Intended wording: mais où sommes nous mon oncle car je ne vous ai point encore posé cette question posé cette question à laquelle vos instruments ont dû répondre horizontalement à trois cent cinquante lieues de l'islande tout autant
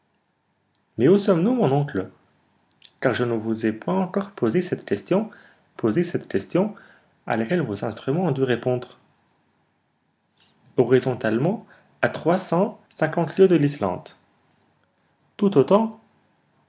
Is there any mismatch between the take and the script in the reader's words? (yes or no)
no